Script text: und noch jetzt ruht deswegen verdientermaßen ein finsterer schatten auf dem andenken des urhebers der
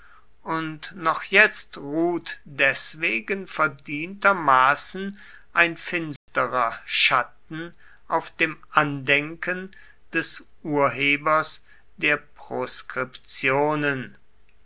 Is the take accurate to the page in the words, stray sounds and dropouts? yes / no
no